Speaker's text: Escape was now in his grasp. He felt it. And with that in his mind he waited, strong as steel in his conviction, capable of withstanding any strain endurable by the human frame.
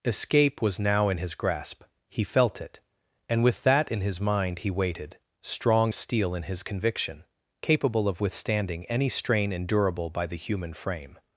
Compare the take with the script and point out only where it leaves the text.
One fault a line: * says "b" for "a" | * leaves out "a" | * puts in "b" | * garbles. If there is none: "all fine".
* leaves out "as"